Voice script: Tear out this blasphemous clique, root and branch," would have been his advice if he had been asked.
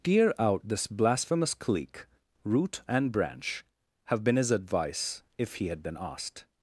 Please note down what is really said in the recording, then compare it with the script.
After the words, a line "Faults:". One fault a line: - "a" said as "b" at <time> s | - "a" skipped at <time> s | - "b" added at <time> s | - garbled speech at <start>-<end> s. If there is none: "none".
Tear out this blasphemous clique, root and branch," have been his advice if he had been asked.
Faults:
- "would" skipped at 3.6 s